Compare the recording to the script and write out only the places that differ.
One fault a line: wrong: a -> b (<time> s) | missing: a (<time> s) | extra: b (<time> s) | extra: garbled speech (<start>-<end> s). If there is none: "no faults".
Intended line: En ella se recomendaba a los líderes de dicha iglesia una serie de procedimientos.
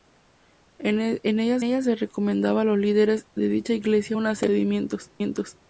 extra: ella (1.6 s)